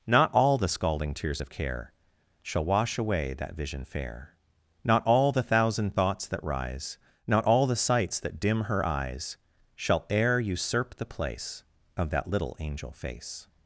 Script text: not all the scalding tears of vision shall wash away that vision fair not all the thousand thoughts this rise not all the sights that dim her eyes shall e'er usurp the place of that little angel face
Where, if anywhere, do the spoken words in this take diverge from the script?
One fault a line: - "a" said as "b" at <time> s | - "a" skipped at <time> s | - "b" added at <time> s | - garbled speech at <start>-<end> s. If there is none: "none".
- "vision" said as "care" at 1.5 s
- "this" said as "that" at 6.3 s